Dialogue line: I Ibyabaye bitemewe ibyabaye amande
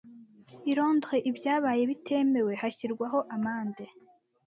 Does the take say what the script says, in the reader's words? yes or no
no